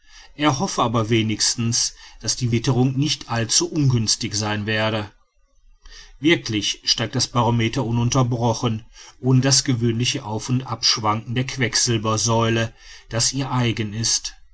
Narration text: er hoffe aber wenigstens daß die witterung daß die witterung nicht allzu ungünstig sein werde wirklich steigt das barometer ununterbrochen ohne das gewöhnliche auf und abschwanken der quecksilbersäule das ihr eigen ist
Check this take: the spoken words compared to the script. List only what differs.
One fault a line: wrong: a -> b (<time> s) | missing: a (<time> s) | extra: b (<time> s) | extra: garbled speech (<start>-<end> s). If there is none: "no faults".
missing: daß die witterung (3.0 s)